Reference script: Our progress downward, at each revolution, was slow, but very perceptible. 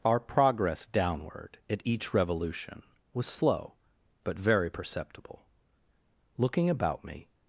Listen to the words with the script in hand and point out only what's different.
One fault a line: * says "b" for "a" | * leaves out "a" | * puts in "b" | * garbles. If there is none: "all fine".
* puts in "Looking about me"